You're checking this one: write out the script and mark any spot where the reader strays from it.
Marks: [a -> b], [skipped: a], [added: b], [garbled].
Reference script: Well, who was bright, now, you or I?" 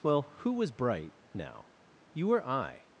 Well, who was bright, now, you or I?"